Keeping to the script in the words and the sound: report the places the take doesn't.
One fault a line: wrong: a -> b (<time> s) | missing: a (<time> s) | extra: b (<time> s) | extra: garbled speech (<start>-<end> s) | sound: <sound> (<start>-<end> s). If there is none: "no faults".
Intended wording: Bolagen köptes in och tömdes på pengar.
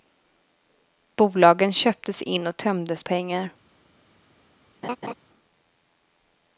missing: på (3.0 s)
sound: laugh (4.8-5.1 s)